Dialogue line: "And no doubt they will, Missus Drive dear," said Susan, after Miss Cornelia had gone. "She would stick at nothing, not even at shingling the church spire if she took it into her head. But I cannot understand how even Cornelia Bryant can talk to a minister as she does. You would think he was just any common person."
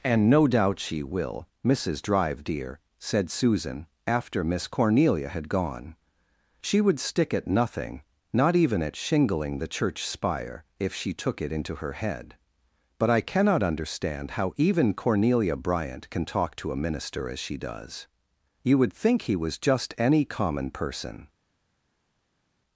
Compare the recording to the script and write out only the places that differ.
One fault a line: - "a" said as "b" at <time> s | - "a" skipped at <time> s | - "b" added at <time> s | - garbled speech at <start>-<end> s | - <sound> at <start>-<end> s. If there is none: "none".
- "they" said as "she" at 0.8 s